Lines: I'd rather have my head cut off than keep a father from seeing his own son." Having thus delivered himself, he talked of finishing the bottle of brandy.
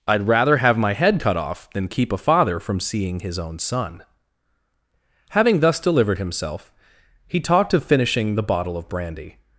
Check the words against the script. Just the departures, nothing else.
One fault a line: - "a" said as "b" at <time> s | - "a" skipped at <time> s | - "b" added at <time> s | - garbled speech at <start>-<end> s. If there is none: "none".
none